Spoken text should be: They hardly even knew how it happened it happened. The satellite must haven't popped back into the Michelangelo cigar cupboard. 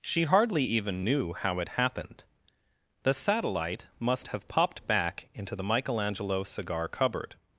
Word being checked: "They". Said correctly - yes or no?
no